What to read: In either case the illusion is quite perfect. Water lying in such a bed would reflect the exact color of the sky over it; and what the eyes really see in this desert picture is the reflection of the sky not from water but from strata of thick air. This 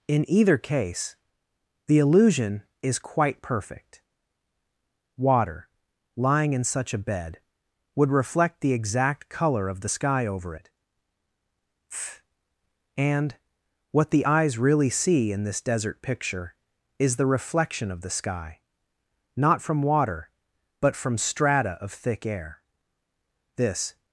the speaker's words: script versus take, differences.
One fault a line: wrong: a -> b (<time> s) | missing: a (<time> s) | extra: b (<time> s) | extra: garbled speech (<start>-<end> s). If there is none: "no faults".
no faults